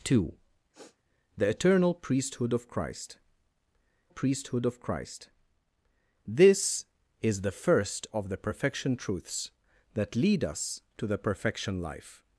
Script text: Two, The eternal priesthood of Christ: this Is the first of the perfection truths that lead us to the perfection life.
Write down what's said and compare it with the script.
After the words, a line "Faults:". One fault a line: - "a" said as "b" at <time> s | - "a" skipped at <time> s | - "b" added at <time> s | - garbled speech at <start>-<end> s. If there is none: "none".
Two, The eternal priesthood of Christ priesthood of Christ: this Is the first of the perfection truths that lead us to the perfection life.
Faults:
- "priesthood of Christ" added at 4.1 s